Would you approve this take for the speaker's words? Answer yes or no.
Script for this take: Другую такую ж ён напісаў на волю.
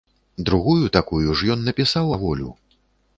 yes